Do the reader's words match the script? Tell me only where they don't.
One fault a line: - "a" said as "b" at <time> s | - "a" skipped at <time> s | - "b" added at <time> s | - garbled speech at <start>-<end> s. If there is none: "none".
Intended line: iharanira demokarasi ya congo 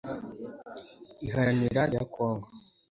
- "demokarasi" skipped at 1.8 s